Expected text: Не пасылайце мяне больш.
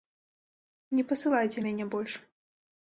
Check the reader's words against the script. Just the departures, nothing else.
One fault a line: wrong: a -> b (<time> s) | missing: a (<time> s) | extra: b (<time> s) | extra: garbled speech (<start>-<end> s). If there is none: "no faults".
no faults